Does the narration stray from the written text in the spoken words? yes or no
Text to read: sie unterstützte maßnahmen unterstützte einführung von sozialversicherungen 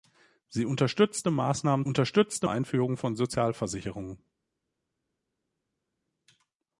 no